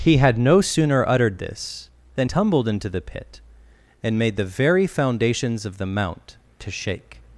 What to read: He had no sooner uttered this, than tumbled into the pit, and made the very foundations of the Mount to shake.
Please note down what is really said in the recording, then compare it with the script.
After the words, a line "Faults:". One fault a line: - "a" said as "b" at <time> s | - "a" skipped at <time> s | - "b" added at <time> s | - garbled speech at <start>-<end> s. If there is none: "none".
He had no sooner uttered this, than tumbled into the pit, and made the very foundations of the Mount to shake.
Faults:
none